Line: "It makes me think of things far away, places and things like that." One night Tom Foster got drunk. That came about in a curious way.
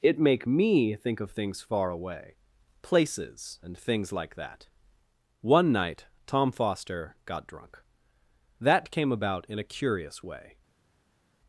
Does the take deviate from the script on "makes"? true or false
true